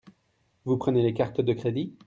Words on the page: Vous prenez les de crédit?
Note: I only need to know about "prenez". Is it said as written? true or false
true